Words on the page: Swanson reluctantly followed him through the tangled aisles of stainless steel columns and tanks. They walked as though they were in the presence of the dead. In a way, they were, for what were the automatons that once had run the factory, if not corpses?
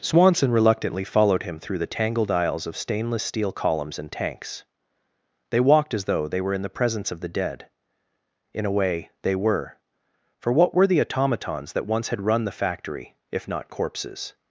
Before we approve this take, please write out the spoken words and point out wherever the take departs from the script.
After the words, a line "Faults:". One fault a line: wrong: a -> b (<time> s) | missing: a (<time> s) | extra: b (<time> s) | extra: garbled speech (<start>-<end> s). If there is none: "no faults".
Swanson reluctantly followed him through the tangled aisles of stainless steel columns and tanks. They walked as though they were in the presence of the dead. In a way, they were, for what were the automatons that once had run the factory, if not corpses?
Faults:
no faults